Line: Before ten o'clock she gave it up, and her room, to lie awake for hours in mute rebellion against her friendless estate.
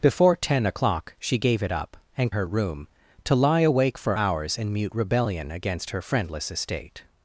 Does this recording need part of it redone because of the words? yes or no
no